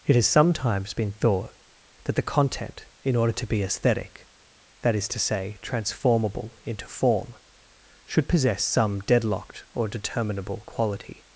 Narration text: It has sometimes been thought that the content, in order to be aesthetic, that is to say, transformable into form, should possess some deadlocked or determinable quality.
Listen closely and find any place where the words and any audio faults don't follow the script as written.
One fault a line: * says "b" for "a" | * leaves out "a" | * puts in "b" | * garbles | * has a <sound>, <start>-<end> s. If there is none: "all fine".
all fine